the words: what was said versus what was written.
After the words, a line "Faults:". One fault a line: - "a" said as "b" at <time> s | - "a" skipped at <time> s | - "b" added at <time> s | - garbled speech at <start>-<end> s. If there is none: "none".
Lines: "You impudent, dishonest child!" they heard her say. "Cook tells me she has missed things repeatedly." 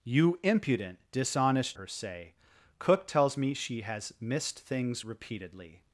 "You impudent, dishonest her say. "Cook tells me she has missed things repeatedly."
Faults:
- "child they heard" skipped at 1.8 s